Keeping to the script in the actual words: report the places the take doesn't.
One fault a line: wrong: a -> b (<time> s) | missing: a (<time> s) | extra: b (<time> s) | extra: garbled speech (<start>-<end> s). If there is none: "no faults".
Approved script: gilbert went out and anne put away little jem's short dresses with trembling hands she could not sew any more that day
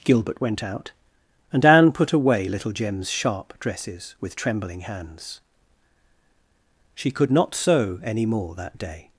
wrong: short -> sharp (3.1 s)